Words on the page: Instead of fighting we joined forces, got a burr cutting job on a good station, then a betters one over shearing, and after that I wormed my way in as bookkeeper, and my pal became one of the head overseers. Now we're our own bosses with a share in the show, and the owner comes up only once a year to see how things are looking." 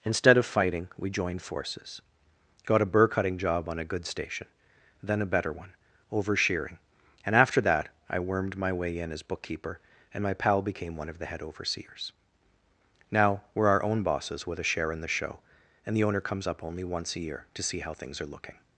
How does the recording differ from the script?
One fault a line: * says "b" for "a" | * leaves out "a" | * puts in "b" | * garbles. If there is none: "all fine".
* says "better" for "betters"